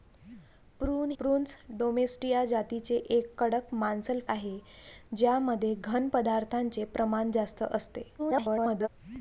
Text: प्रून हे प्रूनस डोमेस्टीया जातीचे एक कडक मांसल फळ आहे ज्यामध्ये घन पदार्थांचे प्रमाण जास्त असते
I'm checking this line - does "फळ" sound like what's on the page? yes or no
no